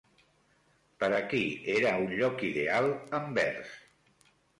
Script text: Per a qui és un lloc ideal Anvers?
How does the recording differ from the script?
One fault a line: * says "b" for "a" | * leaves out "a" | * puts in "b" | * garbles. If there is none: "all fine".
* says "era" for "és"